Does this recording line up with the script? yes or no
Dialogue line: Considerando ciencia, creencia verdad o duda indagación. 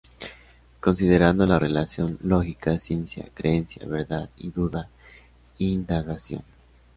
no